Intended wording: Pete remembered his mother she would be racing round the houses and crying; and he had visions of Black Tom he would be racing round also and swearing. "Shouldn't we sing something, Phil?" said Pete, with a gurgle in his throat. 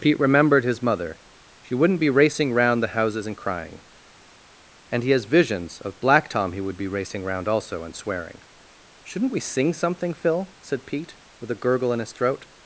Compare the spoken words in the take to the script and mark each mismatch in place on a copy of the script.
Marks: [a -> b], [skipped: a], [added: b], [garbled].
Pete remembered his mother she [would -> wouldn't] be racing round the houses and crying; and he [had -> has] visions of Black Tom he would be racing round also and swearing. "Shouldn't we sing something, Phil?" said Pete, with a gurgle in his throat.